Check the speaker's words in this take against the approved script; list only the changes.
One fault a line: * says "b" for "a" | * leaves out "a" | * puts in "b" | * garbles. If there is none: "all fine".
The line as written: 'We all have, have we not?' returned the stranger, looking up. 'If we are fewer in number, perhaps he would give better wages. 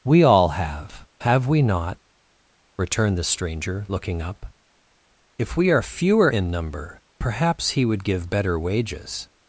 all fine